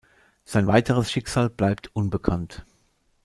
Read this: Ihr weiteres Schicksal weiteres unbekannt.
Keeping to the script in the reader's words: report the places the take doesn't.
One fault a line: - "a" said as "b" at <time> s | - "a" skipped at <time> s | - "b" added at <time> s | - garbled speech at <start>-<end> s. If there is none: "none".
- "Ihr" said as "Sein" at 0.5 s
- "weiteres" said as "bleibt" at 1.5 s